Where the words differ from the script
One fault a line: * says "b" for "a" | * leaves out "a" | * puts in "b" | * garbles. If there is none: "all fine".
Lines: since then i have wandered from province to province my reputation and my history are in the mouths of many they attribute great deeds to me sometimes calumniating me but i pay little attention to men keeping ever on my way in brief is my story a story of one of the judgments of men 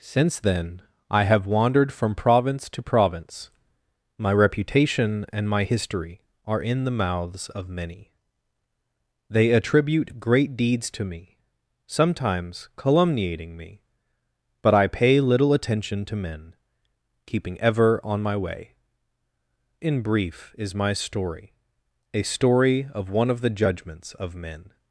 all fine